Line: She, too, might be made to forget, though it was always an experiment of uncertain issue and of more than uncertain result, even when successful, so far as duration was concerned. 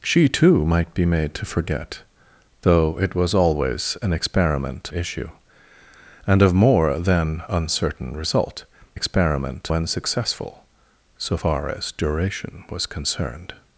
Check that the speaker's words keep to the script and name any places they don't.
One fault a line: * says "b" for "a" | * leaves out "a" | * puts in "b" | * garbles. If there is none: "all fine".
* leaves out "of uncertain"
* says "experiment" for "even"